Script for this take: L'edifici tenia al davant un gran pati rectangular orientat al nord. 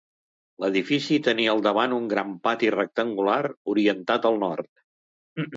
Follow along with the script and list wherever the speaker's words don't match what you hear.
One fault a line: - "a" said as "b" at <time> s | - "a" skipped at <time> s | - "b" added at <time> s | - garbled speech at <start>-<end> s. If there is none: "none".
none